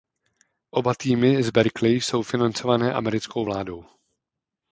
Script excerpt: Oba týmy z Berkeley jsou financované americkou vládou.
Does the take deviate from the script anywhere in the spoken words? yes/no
no